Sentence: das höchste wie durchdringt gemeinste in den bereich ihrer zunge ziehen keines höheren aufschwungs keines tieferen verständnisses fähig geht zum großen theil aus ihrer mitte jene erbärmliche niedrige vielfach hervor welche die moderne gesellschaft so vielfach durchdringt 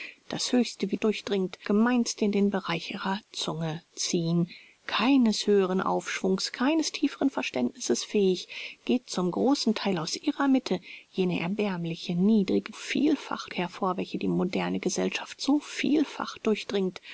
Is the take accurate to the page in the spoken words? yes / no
yes